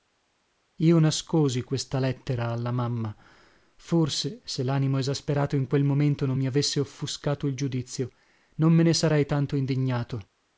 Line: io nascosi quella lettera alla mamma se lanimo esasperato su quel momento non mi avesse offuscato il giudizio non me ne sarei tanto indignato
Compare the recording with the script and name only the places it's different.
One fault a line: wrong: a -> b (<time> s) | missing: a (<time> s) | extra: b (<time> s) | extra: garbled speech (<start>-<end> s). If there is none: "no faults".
wrong: quella -> questa (1.6 s)
extra: forse (3.8 s)
wrong: su -> in (5.5 s)